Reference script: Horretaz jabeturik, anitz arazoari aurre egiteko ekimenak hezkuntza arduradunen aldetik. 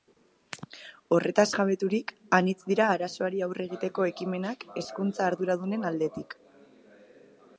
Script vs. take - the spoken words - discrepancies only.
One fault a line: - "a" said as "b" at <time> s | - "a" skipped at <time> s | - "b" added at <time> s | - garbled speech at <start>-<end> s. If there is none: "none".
- "dira" added at 2.7 s